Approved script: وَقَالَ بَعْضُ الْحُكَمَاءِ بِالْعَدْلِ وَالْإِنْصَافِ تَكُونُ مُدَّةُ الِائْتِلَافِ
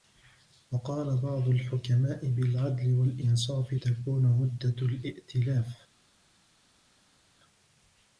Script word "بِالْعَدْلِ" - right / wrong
right